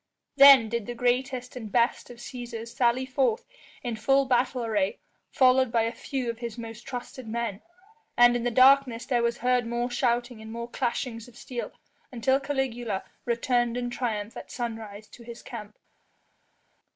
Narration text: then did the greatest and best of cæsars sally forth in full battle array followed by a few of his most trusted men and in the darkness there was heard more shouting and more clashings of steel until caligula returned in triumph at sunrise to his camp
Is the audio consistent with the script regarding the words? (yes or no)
yes